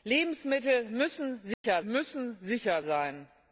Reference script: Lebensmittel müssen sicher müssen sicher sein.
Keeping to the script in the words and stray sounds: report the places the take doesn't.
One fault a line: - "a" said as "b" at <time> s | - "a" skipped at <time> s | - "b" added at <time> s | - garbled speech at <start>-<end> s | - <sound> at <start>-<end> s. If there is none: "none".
- dropout at 1.5-1.6 s